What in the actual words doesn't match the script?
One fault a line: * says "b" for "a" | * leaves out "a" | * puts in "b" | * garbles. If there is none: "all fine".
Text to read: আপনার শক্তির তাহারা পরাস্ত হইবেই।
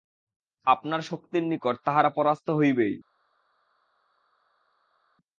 * puts in "নিকট"